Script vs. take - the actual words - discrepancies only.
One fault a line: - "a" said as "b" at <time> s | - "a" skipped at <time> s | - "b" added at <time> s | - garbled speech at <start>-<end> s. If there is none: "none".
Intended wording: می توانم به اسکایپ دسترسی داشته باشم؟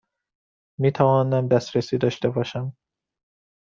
- "به اسکایپ" skipped at 1.5 s